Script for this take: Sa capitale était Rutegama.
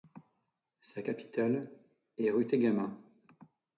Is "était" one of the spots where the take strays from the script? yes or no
yes